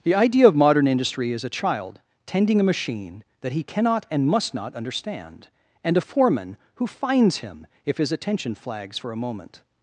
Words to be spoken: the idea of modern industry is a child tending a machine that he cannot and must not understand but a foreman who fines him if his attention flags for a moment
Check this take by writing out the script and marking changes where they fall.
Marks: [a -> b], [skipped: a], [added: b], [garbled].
the idea of modern industry is a child tending a machine that he cannot and must not understand [but -> and] a foreman who fines him if his attention flags for a moment